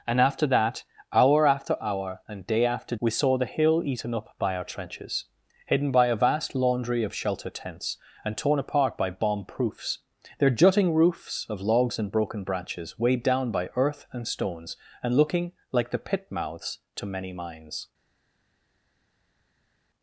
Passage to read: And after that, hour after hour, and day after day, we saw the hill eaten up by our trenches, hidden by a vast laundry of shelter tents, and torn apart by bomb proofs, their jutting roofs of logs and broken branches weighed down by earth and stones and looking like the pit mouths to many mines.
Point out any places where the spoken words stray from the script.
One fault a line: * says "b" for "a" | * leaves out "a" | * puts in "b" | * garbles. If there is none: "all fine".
* leaves out "day"